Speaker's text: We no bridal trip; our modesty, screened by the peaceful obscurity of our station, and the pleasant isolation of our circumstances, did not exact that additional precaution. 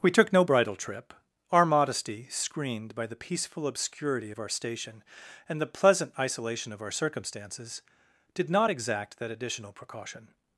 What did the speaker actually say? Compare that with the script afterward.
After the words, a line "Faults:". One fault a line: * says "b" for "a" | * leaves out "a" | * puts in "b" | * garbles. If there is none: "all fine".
We took no bridal trip; our modesty, screened by the peaceful obscurity of our station, and the pleasant isolation of our circumstances, did not exact that additional precaution.
Faults:
* puts in "took"